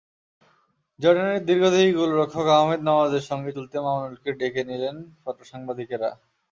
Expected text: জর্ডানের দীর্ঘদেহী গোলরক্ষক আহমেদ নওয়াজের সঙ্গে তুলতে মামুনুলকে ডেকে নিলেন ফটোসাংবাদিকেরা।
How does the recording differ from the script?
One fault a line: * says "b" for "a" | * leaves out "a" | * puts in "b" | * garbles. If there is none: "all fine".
all fine